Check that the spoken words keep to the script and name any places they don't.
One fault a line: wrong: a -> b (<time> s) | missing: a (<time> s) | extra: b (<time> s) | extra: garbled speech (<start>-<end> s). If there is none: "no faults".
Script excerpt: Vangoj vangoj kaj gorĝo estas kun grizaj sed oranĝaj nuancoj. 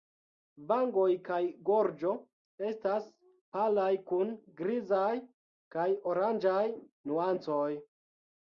missing: vangoj (1.1 s)
extra: palaj (3.6 s)
wrong: sed -> kaj (5.8 s)